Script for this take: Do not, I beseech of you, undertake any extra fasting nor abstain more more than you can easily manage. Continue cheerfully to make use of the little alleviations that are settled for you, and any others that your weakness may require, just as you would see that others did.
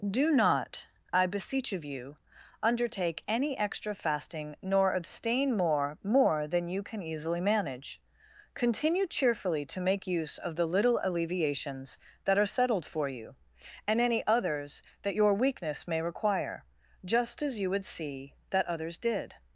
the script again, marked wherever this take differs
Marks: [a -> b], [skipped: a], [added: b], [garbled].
Do not, I beseech of you, undertake any extra fasting nor abstain more more than you can easily manage. Continue cheerfully to make use of the little alleviations that are settled for you, and any others that your weakness may require, just as you would see that others did.